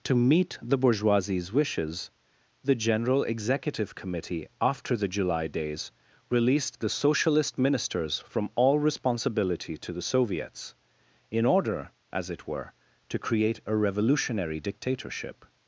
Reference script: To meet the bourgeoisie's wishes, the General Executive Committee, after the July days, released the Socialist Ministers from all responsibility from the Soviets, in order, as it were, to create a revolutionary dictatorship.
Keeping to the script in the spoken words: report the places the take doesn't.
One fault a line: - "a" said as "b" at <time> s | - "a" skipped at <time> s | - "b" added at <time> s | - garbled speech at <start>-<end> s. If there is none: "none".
- "from" said as "to" at 9.8 s